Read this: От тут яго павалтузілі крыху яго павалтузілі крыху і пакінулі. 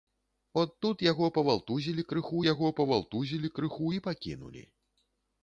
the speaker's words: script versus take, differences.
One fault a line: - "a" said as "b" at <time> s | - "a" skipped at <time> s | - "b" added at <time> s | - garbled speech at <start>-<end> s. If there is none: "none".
none